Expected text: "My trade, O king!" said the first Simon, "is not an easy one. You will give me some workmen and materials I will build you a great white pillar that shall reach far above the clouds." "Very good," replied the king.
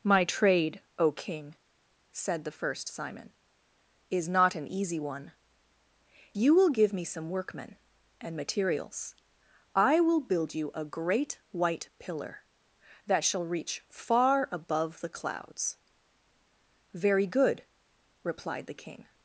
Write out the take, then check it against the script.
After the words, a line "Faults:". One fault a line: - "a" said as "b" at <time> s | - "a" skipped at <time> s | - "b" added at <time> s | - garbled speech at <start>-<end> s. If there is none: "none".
"My trade, O king!" said the first Simon, "is not an easy one. You will give me some workmen and materials I will build you a great white pillar that shall reach far above the clouds." "Very good," replied the king.
Faults:
none